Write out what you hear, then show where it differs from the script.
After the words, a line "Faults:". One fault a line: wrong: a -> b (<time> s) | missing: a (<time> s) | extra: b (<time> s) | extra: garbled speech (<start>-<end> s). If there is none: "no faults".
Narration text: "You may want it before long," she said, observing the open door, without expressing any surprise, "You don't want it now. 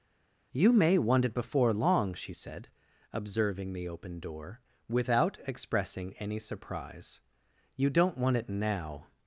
"You may want it before long," she said, observing the open door, without expressing any surprise, "You don't want it now.
Faults:
no faults